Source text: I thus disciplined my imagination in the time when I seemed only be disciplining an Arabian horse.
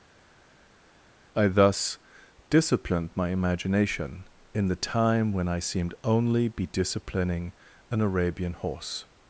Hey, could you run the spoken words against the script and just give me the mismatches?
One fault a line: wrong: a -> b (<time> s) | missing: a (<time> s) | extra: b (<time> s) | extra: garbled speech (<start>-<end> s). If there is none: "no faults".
no faults